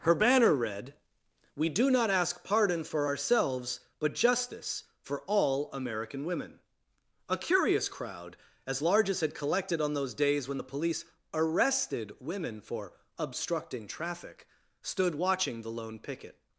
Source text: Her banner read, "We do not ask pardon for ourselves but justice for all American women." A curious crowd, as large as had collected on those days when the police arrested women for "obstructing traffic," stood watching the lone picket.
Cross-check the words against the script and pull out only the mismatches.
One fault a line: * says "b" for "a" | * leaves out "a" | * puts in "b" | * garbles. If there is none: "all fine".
all fine